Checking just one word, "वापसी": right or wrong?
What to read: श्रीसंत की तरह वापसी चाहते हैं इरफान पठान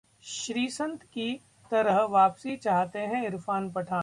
right